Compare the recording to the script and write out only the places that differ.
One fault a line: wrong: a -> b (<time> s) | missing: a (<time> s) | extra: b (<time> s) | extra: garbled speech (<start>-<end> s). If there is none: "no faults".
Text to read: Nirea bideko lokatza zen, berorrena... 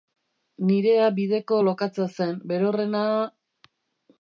no faults